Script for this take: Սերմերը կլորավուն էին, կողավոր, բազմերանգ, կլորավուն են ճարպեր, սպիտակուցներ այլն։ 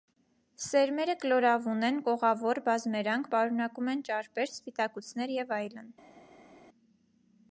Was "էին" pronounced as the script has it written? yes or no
no